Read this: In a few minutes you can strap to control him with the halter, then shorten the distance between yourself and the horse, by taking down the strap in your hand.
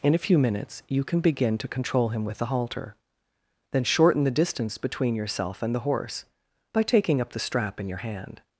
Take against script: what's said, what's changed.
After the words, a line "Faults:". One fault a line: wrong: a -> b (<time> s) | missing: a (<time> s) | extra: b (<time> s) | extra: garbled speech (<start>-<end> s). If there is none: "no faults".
In a few minutes you can begin to control him with the halter, then shorten the distance between yourself and the horse, by taking up the strap in your hand.
Faults:
wrong: strap -> begin (1.2 s)
wrong: down -> up (7.2 s)